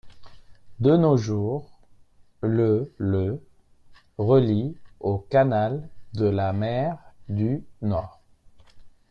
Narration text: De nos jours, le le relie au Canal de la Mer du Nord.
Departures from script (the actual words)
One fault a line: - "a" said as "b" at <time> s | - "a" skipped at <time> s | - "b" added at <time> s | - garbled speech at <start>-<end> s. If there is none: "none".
none